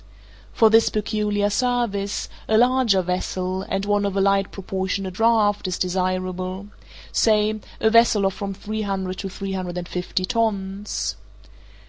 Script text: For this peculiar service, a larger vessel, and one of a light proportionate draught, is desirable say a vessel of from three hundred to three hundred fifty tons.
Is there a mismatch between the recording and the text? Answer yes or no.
yes